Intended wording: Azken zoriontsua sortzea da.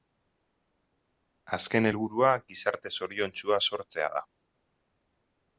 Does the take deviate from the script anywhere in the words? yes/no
yes